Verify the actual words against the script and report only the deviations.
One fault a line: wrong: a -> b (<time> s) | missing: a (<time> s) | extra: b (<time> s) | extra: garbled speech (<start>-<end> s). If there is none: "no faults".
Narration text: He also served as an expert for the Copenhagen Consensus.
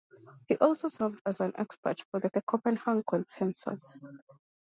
extra: the (2.3 s)